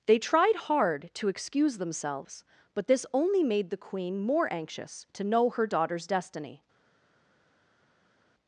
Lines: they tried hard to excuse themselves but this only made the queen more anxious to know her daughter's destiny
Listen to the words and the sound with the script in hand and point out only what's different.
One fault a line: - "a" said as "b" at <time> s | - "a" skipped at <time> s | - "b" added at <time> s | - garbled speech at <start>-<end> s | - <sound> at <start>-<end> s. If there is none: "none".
none